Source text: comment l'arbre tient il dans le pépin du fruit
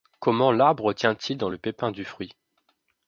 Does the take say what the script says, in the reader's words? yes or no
yes